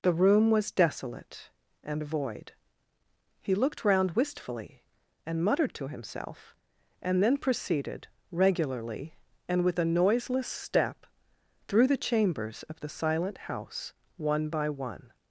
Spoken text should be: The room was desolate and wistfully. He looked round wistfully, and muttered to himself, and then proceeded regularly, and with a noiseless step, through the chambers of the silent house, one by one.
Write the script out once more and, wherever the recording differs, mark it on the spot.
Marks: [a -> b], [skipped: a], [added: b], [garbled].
The room was desolate and [wistfully. -> void] He looked round wistfully, and muttered to himself, and then proceeded regularly, and with a noiseless step, through the chambers of the silent house, one by one.